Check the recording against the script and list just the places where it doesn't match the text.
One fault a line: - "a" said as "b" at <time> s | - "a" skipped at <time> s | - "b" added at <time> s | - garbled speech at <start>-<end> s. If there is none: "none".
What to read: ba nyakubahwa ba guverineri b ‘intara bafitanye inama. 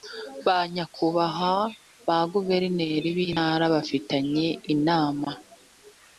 none